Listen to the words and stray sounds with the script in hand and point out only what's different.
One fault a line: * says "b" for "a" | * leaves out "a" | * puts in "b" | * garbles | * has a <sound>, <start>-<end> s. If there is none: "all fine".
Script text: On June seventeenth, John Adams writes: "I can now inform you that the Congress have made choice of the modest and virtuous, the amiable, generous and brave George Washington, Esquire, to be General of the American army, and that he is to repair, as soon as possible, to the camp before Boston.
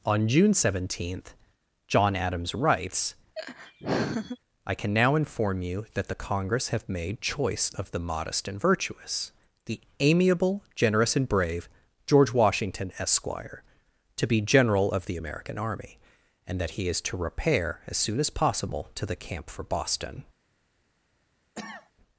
* has a laugh, 3.4-4.4 s
* says "for" for "before"
* has a cough, 21.5-21.9 s